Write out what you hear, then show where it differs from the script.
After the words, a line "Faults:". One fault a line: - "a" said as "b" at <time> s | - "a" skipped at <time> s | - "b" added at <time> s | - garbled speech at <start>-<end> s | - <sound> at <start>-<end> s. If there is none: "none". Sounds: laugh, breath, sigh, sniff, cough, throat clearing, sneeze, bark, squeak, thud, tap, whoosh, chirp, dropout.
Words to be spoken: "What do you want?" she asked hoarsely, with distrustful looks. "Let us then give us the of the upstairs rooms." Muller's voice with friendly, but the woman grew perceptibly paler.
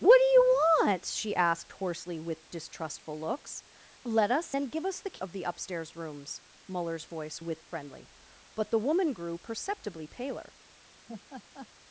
"What do you want?" she asked hoarsely, with distrustful looks. "Let us then give us the of the upstairs rooms." Muller's voice with friendly, but the woman grew perceptibly paler.
Faults:
- laugh at 11.1-11.7 s